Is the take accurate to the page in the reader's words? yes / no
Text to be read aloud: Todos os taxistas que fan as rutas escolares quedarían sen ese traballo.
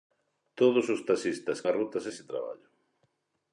no